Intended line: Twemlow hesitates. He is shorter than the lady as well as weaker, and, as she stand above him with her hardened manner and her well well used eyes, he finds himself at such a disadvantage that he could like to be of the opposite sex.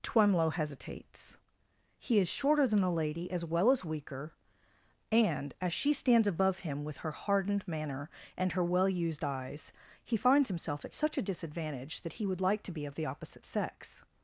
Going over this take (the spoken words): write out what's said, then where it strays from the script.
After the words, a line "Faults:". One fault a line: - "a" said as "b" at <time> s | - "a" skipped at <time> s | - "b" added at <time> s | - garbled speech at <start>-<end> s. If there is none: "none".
Twemlow hesitates. He is shorter than the lady as well as weaker, and, as she stands above him with her hardened manner and her well used eyes, he finds himself at such a disadvantage that he would like to be of the opposite sex.
Faults:
- "stand" said as "stands" at 5.9 s
- "well" skipped at 8.9 s
- "could" said as "would" at 12.3 s